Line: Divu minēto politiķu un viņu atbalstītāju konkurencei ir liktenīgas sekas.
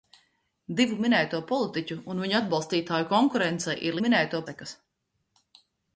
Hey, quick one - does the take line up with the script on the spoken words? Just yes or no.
no